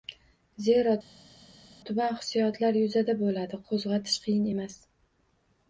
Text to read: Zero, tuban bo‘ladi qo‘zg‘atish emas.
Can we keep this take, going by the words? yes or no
no